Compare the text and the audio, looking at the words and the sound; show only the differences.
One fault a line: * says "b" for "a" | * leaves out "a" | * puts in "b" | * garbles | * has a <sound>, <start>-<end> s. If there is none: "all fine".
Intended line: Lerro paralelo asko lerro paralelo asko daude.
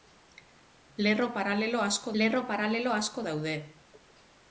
all fine